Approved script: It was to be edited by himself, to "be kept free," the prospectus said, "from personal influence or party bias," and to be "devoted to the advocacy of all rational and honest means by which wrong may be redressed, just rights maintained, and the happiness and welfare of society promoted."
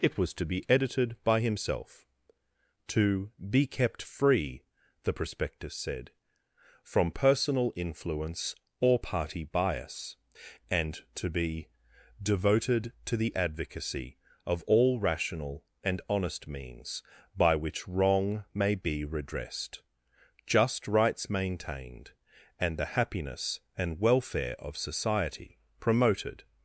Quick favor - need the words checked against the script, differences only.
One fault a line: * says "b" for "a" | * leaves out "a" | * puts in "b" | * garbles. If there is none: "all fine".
all fine